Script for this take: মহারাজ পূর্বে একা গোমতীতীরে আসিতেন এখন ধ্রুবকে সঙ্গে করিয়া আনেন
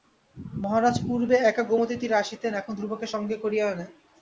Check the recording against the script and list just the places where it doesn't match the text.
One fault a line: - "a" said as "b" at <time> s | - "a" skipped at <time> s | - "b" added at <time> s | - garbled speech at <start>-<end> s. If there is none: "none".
none